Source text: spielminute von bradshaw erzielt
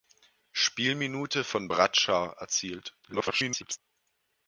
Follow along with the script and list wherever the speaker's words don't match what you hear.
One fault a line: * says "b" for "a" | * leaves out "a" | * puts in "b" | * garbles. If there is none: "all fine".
* garbles